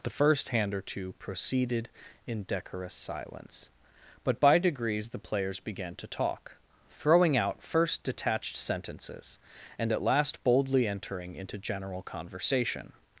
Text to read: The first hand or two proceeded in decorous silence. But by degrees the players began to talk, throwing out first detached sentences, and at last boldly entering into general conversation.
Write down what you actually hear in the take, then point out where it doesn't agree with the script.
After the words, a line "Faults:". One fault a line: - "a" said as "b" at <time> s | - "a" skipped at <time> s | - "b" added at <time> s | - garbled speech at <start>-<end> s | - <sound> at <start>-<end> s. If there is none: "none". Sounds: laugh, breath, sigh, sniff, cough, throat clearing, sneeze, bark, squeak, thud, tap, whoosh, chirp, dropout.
The first hand or two proceeded in decorous silence. But by degrees the players began to talk, throwing out first detached sentences, and at last boldly entering into general conversation.
Faults:
none